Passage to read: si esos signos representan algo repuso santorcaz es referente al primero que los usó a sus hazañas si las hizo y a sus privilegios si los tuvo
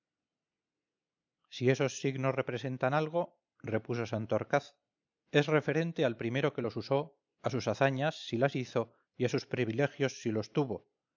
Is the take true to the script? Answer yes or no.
yes